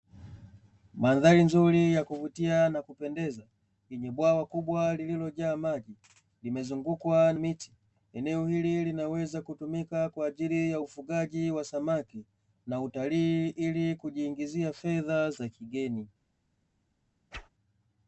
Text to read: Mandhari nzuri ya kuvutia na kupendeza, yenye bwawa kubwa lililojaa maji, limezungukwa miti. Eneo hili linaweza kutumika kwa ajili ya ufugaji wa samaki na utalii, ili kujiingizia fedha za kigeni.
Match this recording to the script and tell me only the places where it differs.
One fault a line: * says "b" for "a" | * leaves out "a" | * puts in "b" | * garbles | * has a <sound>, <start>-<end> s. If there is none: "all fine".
* has a whoosh, 17.3-17.5 s